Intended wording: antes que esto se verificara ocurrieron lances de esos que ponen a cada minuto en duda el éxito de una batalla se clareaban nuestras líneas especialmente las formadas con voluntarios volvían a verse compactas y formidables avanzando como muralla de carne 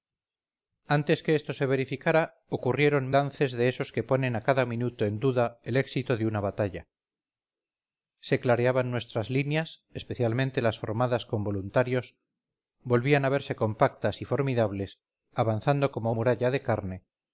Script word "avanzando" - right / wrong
right